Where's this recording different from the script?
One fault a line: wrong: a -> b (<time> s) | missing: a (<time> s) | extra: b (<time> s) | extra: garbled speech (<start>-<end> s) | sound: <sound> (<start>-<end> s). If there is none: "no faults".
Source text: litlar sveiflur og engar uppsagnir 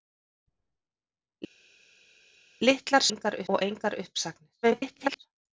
wrong: sveiflur -> engar (3.1 s)
extra: garbled speech (4.6-5.2 s)